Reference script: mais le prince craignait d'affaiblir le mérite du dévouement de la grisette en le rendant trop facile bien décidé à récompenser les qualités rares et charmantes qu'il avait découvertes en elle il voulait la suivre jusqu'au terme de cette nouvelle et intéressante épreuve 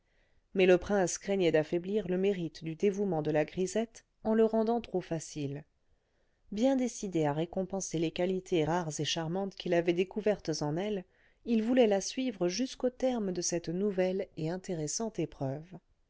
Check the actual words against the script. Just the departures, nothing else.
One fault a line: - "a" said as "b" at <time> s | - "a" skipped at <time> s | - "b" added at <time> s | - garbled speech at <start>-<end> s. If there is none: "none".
none